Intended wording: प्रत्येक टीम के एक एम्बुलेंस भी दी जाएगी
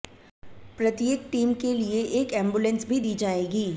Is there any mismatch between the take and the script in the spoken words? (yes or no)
yes